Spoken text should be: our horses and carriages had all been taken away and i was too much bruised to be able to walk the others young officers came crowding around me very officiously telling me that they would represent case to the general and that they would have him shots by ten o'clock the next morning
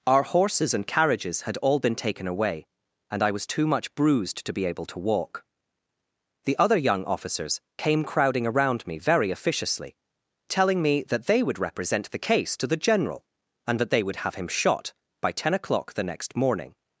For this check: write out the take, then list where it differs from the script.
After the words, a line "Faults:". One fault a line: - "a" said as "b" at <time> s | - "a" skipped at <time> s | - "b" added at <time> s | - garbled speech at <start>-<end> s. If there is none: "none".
our horses and carriages had all been taken away and i was too much bruised to be able to walk the other young officers came crowding around me very officiously telling me that they would represent the case to the general and that they would have him shot by ten o'clock the next morning
Faults:
- "others" said as "other" at 6.6 s
- "the" added at 12.1 s
- "shots" said as "shot" at 14.5 s